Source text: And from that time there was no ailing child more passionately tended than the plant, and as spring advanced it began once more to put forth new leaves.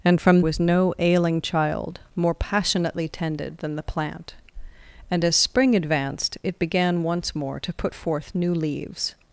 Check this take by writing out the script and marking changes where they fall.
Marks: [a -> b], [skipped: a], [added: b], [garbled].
And from [skipped: that time there] was no ailing child more passionately tended than the plant, and as spring advanced it began once more to put forth new leaves.